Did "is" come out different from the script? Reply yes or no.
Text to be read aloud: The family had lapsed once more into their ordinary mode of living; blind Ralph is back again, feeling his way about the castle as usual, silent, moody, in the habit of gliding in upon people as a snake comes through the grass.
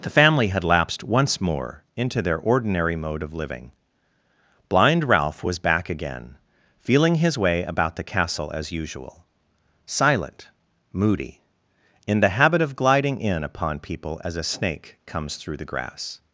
yes